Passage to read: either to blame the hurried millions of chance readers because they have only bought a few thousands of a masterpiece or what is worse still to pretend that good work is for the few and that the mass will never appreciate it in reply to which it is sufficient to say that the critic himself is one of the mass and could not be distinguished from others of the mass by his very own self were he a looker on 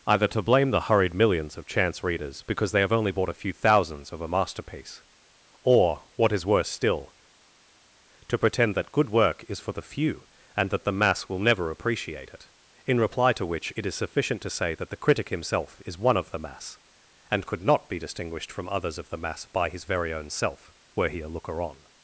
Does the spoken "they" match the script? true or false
true